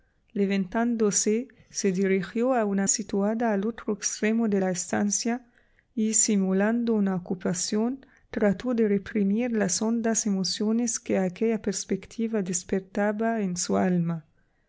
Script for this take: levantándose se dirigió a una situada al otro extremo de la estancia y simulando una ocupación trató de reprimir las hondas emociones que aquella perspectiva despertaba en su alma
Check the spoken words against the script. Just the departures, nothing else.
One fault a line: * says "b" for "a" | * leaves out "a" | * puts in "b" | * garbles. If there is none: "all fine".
all fine